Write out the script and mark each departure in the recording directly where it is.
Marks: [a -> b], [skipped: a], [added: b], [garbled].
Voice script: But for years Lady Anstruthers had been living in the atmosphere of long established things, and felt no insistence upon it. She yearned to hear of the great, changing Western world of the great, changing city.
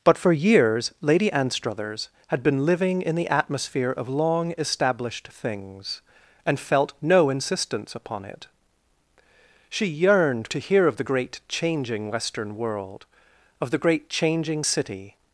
But for years Lady Anstruthers had been living in the atmosphere of long established things, and felt no insistence upon it. She yearned to hear of the great, changing Western world of the great, changing city.